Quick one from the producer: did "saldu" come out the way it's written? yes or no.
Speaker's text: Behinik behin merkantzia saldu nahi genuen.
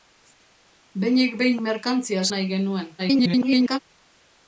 no